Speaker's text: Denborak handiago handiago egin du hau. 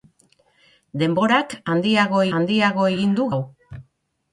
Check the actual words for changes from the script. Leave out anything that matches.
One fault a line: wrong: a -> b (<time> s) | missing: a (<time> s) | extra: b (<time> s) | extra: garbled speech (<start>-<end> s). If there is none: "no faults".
no faults